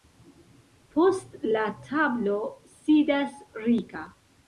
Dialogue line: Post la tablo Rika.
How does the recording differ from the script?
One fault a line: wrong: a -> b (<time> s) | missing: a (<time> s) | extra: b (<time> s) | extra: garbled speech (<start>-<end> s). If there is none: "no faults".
extra: sidas (2.8 s)